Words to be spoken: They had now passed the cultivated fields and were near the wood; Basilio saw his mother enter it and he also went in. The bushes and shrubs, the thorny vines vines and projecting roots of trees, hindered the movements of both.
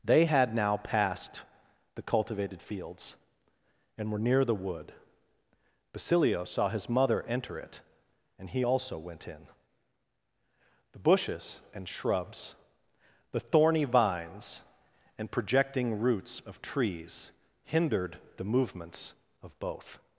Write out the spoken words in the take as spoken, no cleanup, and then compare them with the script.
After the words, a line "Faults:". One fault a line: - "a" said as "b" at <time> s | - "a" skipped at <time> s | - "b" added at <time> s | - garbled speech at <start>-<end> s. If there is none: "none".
They had now passed the cultivated fields and were near the wood; Basilio saw his mother enter it and he also went in. The bushes and shrubs, the thorny vines and projecting roots of trees, hindered the movements of both.
Faults:
- "vines" skipped at 14.6 s